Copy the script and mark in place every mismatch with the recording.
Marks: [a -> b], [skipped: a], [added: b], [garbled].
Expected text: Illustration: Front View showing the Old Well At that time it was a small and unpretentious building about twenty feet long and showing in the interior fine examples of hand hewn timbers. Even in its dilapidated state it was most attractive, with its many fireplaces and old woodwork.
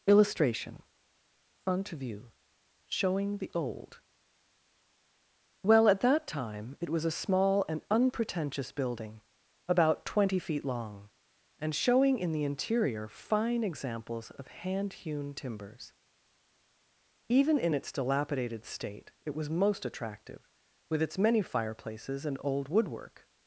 Illustration: Front View showing the Old Well At that time it was a small and unpretentious building about twenty feet long and showing in the interior fine examples of hand hewn timbers. Even in its dilapidated state it was most attractive, with its many fireplaces and old woodwork.